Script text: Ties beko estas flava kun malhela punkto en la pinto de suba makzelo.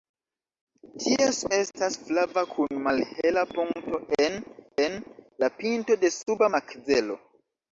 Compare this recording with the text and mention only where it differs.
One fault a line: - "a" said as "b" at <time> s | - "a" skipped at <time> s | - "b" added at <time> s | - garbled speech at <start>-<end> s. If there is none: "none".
- "beko" skipped at 1.4 s
- "en" added at 4.9 s